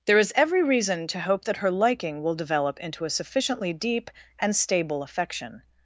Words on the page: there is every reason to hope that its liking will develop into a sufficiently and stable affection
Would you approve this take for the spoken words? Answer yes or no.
no